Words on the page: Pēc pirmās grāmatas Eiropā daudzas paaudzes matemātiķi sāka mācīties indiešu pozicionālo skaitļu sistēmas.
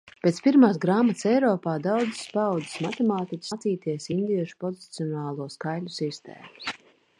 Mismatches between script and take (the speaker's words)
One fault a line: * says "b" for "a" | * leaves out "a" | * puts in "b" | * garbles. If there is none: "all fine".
* leaves out "sāka"